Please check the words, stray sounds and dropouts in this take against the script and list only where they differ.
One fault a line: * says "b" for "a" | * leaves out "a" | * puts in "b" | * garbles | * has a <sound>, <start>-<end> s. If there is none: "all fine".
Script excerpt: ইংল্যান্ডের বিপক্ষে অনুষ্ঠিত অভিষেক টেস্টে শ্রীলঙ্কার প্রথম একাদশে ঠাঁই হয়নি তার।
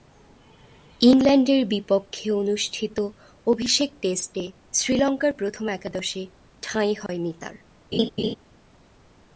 * has a dropout, 7.1-7.1 s
* has a laugh, 7.9-8.3 s